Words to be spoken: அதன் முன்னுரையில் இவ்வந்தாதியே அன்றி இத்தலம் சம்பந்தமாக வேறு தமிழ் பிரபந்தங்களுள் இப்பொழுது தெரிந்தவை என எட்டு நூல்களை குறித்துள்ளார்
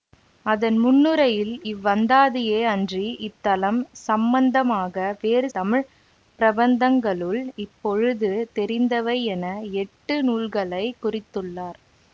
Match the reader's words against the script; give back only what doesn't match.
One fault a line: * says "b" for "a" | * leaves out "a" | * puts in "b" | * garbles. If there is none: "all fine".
all fine